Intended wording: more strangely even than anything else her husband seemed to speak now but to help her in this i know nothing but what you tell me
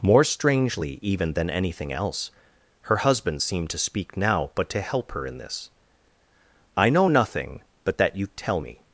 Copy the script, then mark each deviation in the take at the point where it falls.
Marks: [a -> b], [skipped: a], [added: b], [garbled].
more strangely even than anything else her husband seemed to speak now but to help her in this i know nothing but [what -> that] you tell me